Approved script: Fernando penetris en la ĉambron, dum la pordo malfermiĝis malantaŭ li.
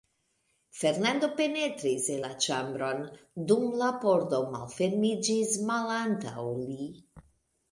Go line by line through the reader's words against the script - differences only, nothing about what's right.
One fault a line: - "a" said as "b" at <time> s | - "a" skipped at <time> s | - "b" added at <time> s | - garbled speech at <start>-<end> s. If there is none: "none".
none